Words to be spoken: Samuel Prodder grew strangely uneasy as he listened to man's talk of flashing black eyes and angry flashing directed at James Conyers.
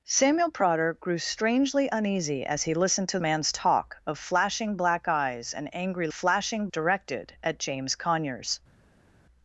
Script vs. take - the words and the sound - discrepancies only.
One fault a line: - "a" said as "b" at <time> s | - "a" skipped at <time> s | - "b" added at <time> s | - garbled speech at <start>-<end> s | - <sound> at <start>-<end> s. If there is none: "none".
none